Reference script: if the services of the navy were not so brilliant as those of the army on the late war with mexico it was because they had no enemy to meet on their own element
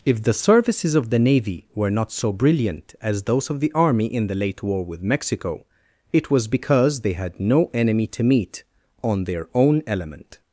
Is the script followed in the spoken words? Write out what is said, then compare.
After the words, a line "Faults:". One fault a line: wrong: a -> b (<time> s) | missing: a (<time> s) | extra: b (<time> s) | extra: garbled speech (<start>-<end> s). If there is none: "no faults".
if the services of the navy were not so brilliant as those of the army in the late war with mexico it was because they had no enemy to meet on their own element
Faults:
wrong: on -> in (4.0 s)